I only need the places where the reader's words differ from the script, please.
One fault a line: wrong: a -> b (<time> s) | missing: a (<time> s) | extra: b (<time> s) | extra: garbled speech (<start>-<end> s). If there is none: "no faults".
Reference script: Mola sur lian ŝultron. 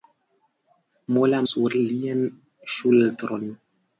no faults